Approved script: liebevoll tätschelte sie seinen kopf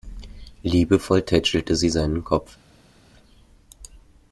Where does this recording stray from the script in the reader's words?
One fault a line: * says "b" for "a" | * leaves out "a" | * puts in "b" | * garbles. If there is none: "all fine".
all fine